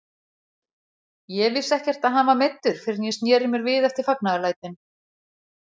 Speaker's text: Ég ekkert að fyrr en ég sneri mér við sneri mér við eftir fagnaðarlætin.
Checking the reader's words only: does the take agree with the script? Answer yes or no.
no